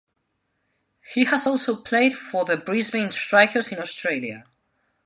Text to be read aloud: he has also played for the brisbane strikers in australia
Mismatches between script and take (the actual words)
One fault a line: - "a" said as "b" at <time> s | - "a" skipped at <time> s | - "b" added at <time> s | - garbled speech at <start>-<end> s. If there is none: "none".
none